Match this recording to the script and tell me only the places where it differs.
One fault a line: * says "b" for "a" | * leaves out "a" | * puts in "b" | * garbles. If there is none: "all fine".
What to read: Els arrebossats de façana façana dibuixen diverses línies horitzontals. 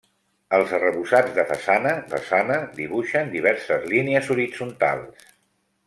all fine